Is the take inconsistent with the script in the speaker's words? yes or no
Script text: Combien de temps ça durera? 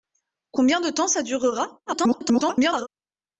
yes